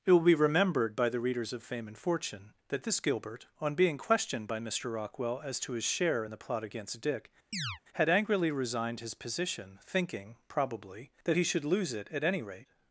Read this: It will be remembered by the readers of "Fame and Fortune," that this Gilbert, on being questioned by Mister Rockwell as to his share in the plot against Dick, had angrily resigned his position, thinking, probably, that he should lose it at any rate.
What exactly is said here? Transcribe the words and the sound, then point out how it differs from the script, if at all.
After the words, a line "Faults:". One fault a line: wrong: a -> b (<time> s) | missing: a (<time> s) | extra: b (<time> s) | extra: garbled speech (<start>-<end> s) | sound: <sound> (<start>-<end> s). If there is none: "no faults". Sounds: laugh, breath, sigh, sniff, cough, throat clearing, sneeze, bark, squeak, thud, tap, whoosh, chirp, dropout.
It will be remembered by the readers of "Fame and Fortune," that this Gilbert, on being questioned by Mister Rockwell as to his share in the plot against Dick, had angrily resigned his position, thinking, probably, that he should lose it at any rate.
Faults:
sound: chirp (7.5-7.8 s)